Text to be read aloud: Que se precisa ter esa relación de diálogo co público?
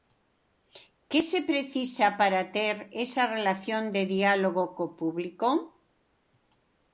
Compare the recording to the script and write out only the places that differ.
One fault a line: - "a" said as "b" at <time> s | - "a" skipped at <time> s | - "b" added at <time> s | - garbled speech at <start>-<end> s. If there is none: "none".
- "para" added at 2.2 s